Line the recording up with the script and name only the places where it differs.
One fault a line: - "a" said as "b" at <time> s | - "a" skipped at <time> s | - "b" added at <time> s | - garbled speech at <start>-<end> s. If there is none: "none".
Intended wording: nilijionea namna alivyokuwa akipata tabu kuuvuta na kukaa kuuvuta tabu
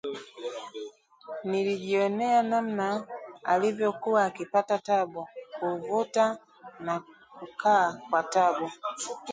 - "kuuvuta" said as "kwa" at 8.1 s